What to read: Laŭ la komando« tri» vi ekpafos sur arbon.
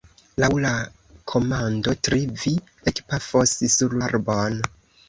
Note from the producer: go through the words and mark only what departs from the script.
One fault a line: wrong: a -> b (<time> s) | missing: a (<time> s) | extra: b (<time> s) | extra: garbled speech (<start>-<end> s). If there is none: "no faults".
no faults